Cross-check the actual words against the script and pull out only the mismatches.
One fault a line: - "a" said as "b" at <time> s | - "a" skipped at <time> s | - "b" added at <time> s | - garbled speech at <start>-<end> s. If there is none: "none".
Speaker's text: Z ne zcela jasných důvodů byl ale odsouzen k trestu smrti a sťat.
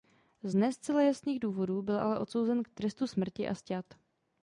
none